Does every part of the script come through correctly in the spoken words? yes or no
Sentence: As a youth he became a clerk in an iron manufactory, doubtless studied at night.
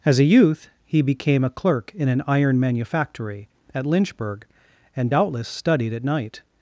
no